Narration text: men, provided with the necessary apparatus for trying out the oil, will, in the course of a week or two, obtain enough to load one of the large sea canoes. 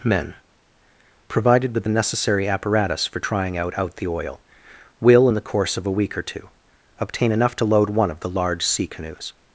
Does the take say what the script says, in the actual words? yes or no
no